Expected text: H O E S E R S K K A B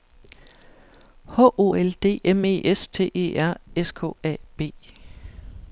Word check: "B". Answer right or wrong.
right